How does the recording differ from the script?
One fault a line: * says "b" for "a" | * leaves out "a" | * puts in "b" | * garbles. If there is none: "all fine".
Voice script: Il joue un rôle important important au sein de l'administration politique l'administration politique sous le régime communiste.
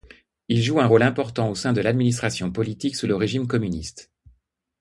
* leaves out "important"
* leaves out "l'administration politique"